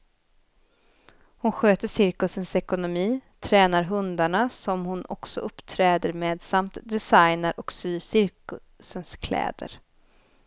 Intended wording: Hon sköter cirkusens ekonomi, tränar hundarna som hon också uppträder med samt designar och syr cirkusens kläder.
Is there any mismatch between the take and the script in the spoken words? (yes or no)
no